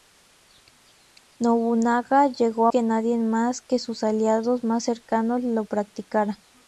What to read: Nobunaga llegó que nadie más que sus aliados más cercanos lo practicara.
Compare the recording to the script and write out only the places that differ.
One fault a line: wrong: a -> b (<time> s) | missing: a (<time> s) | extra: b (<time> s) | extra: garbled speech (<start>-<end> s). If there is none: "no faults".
no faults